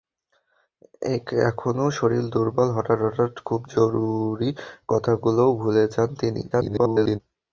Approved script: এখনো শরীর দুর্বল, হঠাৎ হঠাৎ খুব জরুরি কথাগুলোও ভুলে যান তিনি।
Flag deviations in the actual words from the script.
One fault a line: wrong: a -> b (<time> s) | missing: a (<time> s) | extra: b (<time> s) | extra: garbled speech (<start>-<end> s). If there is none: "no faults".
extra: garbled speech (6.5-7.2 s)